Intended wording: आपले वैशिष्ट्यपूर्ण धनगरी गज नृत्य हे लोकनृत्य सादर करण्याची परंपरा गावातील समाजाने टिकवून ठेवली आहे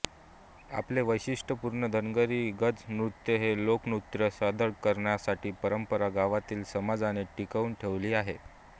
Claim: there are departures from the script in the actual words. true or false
false